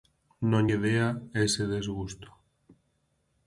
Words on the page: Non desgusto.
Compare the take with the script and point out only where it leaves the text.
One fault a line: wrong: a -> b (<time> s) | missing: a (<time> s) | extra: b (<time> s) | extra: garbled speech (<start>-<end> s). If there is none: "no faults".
extra: lle dea ese (0.7 s)